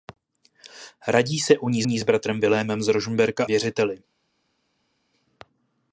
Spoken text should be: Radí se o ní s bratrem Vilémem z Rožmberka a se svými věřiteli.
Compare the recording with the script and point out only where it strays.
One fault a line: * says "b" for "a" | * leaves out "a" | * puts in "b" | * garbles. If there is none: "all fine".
* puts in "ní"
* leaves out "a se svými"